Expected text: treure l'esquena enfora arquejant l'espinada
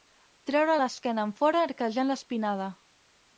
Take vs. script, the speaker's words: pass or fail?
pass